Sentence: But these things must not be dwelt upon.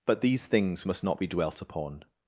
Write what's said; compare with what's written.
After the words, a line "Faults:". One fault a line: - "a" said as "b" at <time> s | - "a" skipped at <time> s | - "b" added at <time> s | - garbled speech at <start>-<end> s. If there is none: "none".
But these things must not be dwelt upon.
Faults:
none